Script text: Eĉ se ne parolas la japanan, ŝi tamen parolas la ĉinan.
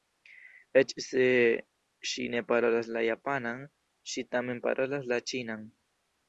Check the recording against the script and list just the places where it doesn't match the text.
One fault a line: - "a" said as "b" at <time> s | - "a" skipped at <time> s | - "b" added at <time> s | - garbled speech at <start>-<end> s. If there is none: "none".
- "ŝi" added at 2.1 s